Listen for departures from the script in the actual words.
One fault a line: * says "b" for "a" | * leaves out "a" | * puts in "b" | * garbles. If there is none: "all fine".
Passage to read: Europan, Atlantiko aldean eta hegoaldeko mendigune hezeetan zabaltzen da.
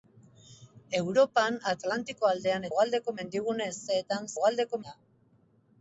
* leaves out "eta"
* says "hegoaldeko" for "zabaltzen"